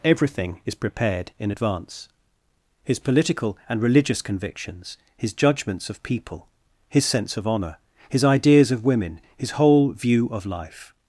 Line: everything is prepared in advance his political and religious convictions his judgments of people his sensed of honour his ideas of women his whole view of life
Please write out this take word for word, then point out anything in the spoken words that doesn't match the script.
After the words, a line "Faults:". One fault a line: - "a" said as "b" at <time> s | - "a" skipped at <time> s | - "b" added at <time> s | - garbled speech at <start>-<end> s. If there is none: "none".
everything is prepared in advance his political and religious convictions his judgments of people his sense of honour his ideas of women his whole view of life
Faults:
- "sensed" said as "sense" at 7.1 s